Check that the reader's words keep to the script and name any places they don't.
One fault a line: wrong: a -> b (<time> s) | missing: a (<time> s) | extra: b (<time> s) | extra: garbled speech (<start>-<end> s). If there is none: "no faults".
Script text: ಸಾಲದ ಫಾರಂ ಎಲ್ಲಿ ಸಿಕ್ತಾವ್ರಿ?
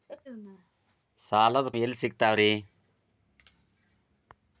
missing: ಫಾರಂ (1.7 s)